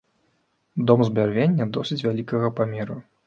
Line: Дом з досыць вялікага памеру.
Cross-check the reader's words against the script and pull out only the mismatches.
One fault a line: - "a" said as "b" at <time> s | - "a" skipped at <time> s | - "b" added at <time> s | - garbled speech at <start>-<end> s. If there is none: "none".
- "бярвення" added at 1.2 s